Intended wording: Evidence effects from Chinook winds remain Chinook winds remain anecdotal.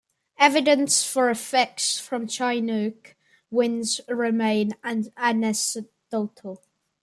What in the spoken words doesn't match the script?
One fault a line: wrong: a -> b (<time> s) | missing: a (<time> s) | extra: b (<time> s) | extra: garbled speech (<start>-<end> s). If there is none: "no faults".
extra: for (1.0 s)
missing: Chinook winds remain (4.8 s)